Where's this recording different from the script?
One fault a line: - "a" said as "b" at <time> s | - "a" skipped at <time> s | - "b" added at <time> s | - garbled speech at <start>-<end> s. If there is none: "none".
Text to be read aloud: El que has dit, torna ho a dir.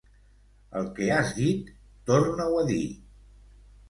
none